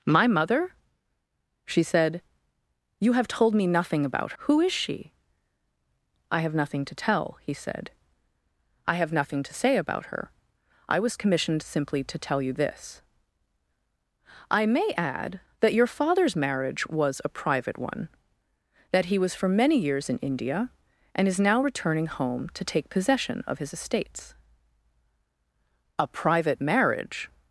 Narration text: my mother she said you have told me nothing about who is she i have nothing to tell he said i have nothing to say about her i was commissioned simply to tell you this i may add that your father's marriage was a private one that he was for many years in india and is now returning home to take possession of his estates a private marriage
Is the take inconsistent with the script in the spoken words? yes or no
no